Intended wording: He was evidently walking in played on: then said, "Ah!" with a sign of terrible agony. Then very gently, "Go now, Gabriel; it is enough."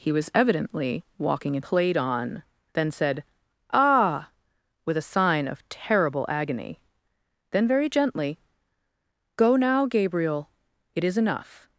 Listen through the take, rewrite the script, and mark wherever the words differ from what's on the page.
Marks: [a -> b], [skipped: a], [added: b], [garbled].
He was evidently walking in played on: then said, "Ah!" with a sign of terrible agony. Then very gently, "Go now, Gabriel; it is enough."